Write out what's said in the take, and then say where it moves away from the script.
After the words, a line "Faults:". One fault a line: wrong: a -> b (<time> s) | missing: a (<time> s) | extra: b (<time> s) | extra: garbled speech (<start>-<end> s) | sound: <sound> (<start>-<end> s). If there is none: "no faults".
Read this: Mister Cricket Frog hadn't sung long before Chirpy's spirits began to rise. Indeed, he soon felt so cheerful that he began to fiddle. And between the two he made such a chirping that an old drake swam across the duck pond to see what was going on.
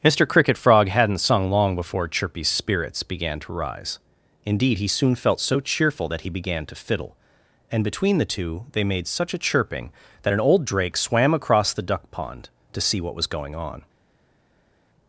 Mister Cricket Frog hadn't sung long before Chirpy's spirits began to rise. Indeed, he soon felt so cheerful that he began to fiddle. And between the two they made such a chirping that an old drake swam across the duck pond to see what was going on.
Faults:
wrong: he -> they (8.7 s)